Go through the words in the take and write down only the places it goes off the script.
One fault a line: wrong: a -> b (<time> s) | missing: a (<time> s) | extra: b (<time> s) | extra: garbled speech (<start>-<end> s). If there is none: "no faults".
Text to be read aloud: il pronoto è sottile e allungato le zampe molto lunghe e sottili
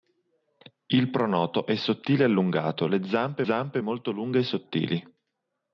extra: zampe (3.4 s)